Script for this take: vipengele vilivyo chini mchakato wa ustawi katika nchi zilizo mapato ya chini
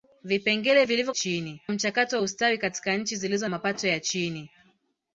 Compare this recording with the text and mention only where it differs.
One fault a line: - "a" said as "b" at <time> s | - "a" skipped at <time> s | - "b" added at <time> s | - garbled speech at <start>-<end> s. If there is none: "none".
none